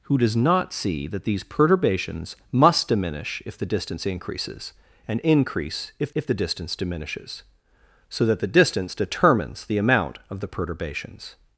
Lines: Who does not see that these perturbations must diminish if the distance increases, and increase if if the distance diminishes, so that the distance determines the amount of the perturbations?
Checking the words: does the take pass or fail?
pass